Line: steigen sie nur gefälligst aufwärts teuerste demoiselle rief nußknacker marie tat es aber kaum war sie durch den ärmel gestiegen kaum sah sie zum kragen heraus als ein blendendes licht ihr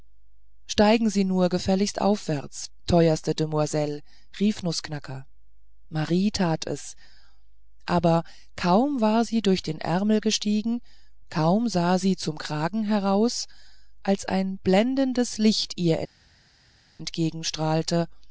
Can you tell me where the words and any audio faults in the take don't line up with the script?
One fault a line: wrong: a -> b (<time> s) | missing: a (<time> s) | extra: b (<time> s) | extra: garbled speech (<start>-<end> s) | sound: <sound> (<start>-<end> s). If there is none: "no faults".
no faults